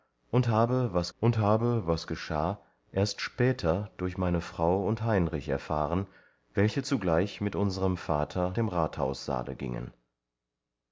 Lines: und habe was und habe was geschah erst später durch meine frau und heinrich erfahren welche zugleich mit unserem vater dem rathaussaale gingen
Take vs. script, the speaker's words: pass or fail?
pass